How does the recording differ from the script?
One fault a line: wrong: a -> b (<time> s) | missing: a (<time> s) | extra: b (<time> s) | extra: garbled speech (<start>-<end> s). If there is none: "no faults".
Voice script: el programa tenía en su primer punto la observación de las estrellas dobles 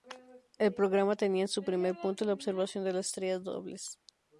no faults